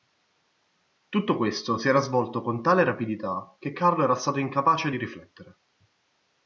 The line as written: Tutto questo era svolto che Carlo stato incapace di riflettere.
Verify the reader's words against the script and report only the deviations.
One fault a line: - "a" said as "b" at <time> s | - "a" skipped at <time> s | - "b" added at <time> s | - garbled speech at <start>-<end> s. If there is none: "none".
- "si" added at 1.8 s
- "con tale rapidità" added at 2.4 s
- "era" added at 4.0 s